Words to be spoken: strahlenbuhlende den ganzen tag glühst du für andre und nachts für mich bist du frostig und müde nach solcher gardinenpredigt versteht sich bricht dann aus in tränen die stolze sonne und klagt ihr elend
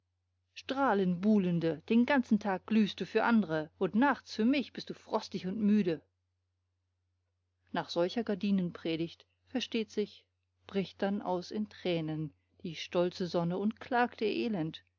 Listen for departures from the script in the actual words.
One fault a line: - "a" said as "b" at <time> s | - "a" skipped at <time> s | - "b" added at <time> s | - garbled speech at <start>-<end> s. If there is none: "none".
none